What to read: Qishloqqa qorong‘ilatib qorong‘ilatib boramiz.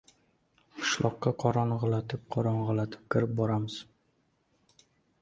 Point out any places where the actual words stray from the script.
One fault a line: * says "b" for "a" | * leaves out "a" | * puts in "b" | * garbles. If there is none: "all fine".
* puts in "kirib"